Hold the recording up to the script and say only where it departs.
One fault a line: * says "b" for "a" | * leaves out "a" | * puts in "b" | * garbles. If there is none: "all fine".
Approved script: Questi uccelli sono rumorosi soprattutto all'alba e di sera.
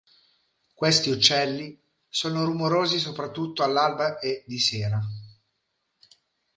all fine